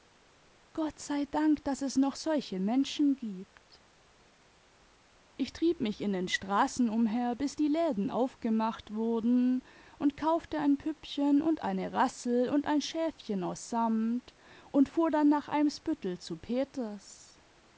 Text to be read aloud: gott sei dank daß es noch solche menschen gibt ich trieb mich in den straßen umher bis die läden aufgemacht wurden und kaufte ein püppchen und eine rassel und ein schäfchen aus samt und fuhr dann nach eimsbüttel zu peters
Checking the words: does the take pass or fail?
pass